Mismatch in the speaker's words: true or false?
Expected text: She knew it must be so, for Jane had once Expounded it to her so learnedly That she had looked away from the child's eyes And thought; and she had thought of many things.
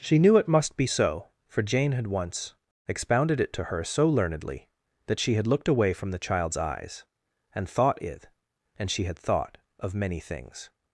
true